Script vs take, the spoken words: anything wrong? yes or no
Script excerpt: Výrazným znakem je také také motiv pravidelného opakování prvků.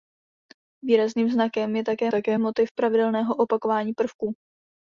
no